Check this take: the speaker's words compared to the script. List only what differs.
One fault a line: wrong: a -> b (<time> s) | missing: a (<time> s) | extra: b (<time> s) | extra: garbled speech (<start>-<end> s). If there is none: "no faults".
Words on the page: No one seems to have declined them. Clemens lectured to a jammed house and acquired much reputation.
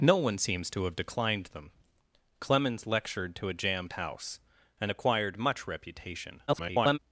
extra: garbled speech (6.5-7.0 s)